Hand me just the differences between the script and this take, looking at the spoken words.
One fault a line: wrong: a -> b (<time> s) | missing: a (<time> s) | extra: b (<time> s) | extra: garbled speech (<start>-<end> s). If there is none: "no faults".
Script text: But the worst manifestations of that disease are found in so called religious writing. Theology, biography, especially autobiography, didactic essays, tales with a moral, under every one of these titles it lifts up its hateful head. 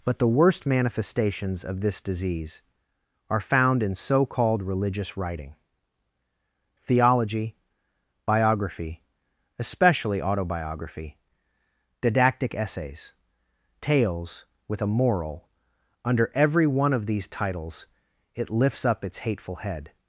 wrong: that -> this (1.8 s)